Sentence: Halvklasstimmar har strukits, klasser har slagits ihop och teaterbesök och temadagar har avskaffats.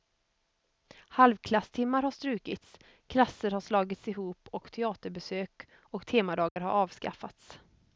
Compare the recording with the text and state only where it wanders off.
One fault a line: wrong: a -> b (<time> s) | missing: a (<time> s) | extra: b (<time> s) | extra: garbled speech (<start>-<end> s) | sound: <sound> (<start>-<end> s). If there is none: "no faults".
sound: dropout (6.5-6.6 s)